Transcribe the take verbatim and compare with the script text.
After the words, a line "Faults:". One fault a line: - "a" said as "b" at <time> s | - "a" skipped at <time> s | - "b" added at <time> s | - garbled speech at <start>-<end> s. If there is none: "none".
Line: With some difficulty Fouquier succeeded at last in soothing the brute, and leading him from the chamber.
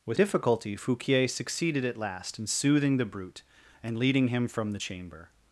With difficulty Fouquier succeeded at last in soothing the brute, and leading him from the chamber.
Faults:
- "some" skipped at 0.2 s